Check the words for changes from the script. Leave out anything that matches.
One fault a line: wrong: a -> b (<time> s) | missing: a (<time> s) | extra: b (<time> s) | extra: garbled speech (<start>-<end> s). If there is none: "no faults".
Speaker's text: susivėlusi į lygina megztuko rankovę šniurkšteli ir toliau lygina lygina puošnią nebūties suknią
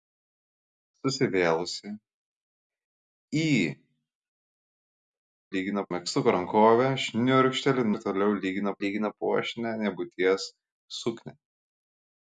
no faults